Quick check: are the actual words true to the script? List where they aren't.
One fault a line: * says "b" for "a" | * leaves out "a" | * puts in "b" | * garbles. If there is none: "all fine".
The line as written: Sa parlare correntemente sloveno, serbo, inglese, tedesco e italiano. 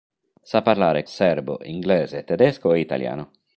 * leaves out "correntemente sloveno"